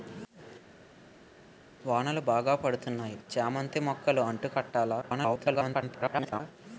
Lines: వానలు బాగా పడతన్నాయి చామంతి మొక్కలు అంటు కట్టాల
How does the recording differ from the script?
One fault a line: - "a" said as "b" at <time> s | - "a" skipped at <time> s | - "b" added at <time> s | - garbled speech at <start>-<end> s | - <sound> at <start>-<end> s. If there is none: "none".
- garbled speech at 5.0-6.4 s